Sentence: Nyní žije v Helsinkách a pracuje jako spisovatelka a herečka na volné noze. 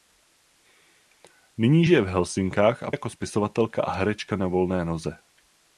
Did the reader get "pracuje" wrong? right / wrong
wrong